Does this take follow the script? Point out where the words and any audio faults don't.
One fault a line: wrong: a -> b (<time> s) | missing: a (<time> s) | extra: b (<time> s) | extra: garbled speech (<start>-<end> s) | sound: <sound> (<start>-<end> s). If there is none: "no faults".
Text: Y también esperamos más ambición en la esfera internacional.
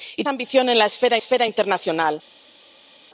missing: también esperamos más (0.2 s)
extra: esfera (1.1 s)